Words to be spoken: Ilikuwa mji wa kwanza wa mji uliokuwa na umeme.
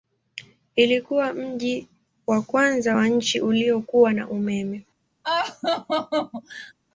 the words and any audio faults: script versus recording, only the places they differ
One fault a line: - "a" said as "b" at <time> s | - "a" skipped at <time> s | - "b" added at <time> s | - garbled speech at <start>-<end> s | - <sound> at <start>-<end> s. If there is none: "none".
- "mji" said as "nchi" at 3.1 s
- laugh at 5.2-6.7 s